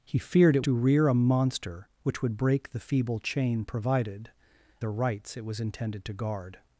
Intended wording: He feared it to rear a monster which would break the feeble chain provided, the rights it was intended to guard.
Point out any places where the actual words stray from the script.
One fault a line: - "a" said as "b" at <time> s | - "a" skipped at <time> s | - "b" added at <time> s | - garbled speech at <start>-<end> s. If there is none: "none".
none